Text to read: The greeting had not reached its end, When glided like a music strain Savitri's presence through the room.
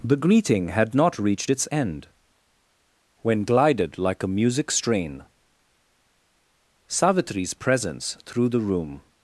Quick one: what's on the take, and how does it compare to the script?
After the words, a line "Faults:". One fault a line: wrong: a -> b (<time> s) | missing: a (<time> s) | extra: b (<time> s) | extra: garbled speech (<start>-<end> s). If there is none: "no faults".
The greeting had not reached its end, When glided like a music strain Savitri's presence through the room.
Faults:
no faults